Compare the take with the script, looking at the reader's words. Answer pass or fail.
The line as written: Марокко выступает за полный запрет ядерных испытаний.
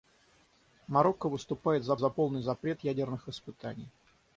fail